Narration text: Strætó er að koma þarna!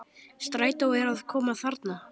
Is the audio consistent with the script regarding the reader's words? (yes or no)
yes